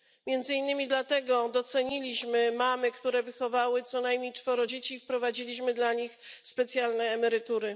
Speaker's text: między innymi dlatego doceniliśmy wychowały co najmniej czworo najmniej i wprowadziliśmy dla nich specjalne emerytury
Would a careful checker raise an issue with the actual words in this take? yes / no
yes